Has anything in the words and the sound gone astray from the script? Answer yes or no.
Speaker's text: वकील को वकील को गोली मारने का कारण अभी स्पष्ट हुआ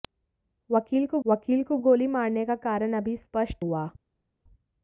no